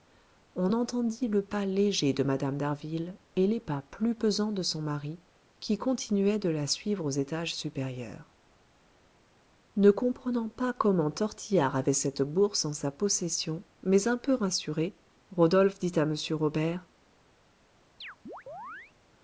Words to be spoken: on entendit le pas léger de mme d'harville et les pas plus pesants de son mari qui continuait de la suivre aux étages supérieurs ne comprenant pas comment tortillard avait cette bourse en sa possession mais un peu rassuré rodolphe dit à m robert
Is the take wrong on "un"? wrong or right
right